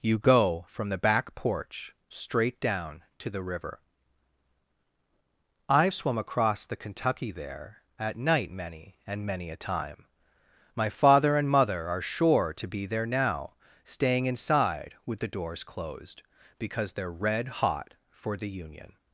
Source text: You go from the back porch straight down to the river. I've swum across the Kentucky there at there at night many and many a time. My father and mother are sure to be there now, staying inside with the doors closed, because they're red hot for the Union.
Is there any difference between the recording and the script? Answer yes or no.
yes